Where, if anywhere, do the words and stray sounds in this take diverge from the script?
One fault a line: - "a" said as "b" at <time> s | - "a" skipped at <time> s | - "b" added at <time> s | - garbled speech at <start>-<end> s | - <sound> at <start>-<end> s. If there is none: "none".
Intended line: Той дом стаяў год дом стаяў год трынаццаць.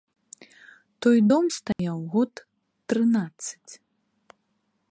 - dropout at 1.7-1.8 s
- "дом стаяў год" skipped at 2.3 s